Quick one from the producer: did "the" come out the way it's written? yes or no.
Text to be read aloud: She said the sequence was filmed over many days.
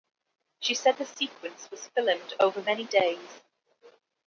yes